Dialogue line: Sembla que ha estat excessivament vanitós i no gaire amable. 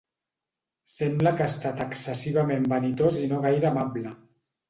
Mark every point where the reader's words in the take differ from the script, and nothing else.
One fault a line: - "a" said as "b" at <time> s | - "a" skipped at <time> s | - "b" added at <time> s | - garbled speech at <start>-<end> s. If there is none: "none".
none